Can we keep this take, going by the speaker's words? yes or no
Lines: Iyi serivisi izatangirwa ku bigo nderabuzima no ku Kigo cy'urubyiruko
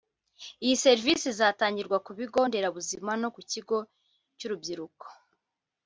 yes